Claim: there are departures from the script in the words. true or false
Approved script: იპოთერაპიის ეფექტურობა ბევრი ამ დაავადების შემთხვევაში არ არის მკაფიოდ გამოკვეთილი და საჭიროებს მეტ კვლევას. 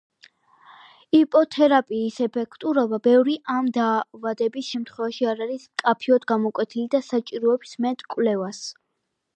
false